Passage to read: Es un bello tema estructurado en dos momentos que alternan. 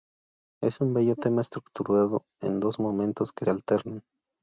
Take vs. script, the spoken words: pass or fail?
pass